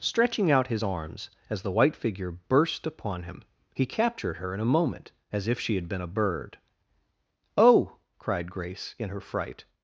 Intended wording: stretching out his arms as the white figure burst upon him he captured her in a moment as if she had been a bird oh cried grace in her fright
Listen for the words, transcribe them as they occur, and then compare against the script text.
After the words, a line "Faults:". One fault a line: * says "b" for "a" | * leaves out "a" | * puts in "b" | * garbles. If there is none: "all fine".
stretching out his arms as the white figure burst upon him he captured her in a moment as if she had been a bird oh cried grace in her fright
Faults:
all fine